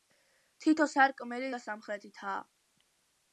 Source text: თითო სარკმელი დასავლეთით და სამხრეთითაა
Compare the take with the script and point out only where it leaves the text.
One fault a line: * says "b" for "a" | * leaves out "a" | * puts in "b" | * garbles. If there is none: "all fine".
* leaves out "დასავლეთით"